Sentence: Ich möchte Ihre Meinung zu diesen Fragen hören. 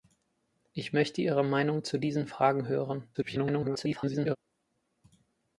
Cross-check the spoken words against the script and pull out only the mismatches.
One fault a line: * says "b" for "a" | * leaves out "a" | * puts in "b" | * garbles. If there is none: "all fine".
* garbles